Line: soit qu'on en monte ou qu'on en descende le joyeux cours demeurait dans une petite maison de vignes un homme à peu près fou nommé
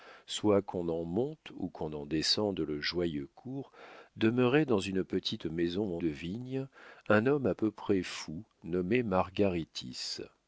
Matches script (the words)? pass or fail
pass